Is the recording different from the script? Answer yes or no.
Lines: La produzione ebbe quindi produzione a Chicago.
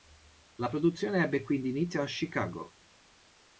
yes